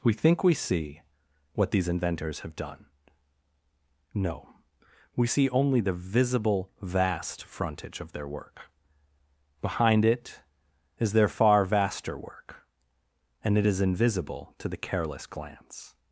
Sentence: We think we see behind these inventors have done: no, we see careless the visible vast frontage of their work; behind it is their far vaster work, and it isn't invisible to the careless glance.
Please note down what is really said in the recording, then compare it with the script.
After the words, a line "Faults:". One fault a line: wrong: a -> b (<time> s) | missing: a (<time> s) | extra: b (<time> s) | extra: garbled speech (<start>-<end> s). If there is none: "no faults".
We think we see what these inventors have done: no, we see only the visible vast frontage of their work; behind it is their far vaster work, and it is invisible to the careless glance.
Faults:
wrong: behind -> what (1.5 s)
wrong: careless -> only (5.5 s)
wrong: isn't -> is (13.7 s)